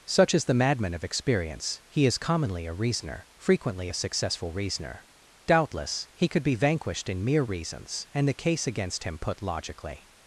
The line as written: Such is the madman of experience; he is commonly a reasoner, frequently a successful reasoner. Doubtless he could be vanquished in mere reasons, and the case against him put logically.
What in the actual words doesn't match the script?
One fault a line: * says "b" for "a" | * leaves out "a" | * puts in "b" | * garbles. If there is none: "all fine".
all fine